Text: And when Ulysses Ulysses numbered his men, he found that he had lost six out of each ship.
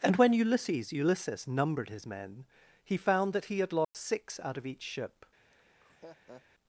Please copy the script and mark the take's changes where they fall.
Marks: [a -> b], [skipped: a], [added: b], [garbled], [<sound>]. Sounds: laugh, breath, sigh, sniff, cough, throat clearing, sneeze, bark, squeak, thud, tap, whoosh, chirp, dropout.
And when Ulysses Ulysses numbered his men, he found that he had lost [dropout] six out of each ship. [laugh]